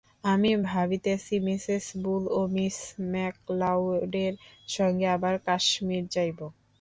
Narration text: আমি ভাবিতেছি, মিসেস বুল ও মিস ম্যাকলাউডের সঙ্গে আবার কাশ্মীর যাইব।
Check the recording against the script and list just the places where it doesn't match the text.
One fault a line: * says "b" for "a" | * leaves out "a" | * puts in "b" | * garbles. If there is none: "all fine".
all fine